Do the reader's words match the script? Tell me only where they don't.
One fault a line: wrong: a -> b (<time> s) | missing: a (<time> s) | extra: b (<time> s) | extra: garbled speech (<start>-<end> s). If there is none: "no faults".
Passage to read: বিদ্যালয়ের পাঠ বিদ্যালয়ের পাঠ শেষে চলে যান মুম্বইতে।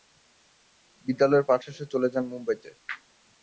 missing: বিদ্যালয়ের পাঠ (1.6 s)